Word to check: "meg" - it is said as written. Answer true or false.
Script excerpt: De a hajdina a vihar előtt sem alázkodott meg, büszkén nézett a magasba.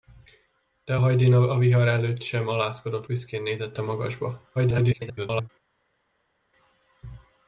false